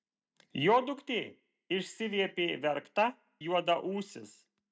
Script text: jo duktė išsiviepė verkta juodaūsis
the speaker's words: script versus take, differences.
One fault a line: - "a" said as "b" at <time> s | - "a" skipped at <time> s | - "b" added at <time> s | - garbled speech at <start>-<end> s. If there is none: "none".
none